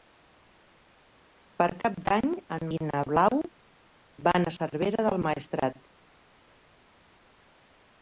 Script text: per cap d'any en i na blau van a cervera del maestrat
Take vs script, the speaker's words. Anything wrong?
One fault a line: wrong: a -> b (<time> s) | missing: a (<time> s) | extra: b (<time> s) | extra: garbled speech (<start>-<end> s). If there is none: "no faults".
no faults